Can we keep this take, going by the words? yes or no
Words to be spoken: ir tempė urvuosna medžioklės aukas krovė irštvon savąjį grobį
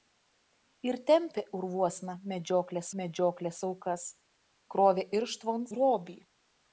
no